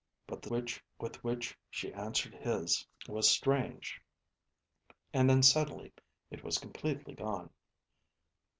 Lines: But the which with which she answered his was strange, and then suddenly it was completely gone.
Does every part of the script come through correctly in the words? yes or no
yes